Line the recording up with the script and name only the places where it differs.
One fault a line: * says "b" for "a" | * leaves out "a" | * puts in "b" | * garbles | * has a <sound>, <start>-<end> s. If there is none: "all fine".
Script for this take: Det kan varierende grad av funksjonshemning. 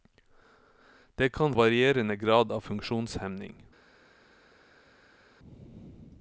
all fine